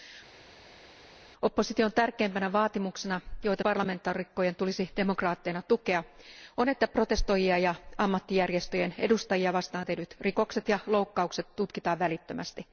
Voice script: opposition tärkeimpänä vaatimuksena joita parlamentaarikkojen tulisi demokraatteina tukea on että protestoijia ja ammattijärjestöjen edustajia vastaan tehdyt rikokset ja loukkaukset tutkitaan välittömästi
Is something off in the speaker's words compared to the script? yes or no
no